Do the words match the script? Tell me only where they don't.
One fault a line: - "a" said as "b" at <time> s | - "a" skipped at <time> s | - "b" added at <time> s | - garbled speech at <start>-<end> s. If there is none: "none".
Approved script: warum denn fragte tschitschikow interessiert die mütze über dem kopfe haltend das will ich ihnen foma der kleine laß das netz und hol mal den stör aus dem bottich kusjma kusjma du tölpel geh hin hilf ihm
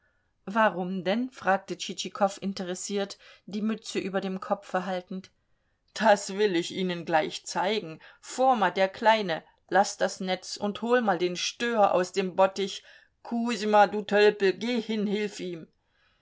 - "gleich zeigen" added at 7.0 s
- "kusjma" skipped at 13.8 s